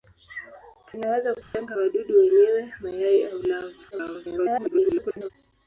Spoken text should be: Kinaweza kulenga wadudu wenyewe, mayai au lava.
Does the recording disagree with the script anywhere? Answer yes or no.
yes